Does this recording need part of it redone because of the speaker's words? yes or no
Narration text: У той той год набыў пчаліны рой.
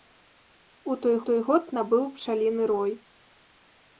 no